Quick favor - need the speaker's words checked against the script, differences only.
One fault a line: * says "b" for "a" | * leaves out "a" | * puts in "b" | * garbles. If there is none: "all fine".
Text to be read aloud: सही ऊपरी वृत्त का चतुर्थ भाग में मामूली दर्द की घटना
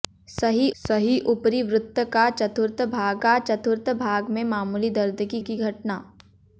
* puts in "सही"
* puts in "का चतुर्थ भाग"
* puts in "की"